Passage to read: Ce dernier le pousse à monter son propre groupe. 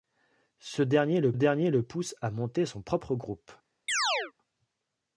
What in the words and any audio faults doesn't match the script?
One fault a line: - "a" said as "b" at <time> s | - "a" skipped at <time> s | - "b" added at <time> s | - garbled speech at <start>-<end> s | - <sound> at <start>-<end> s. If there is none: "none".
- "dernier le" added at 1.3 s
- chirp at 3.9-4.3 s